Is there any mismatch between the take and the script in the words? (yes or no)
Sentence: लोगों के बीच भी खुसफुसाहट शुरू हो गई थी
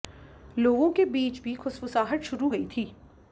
yes